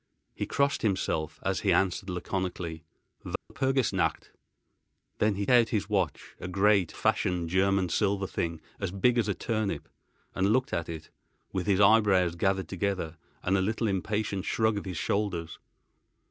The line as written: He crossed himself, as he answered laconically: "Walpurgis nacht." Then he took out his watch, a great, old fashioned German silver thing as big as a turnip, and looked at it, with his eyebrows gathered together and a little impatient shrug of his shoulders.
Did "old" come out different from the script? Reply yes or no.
yes